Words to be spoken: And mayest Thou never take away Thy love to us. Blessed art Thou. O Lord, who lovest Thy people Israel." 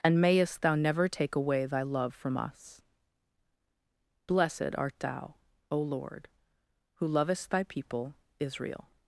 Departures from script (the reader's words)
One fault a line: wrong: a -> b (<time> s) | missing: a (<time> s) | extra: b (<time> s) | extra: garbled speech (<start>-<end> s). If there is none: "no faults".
wrong: to -> from (2.1 s)